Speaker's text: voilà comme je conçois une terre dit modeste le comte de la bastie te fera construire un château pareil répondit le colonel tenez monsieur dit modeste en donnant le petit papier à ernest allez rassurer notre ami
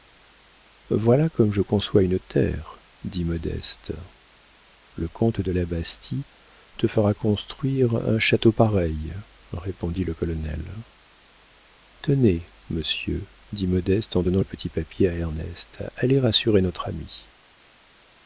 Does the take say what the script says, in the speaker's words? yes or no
yes